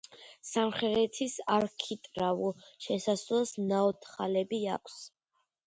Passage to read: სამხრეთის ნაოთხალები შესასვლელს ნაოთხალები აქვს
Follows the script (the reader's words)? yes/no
no